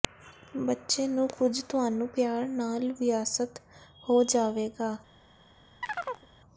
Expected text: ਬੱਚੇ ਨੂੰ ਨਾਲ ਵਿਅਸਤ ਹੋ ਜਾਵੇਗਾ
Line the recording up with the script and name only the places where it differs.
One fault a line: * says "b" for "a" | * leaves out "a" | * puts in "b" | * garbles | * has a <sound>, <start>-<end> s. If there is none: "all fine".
* puts in "ਕੁਝ ਤੁਹਾਨੂੰ ਪਿਆਰ"
* has a chirp, 5.8-6.3 s